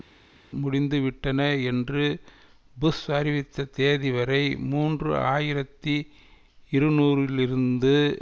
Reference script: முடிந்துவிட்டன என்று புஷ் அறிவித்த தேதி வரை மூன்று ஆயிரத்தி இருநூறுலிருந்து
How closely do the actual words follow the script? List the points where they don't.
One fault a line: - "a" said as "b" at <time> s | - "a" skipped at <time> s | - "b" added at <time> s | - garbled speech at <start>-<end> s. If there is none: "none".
none